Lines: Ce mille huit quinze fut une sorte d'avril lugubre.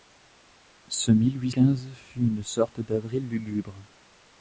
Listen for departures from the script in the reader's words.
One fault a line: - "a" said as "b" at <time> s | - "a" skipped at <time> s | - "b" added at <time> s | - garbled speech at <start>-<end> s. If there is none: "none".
none